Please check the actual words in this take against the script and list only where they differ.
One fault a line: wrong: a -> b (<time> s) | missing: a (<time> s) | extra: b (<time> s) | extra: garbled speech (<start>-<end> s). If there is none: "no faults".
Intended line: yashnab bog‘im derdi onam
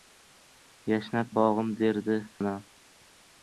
no faults